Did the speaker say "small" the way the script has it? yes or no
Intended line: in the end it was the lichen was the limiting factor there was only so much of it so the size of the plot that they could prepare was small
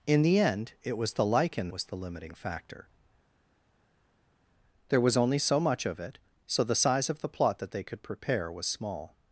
yes